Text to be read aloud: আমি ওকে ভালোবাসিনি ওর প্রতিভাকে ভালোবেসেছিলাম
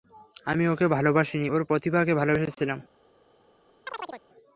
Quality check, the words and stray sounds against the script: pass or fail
fail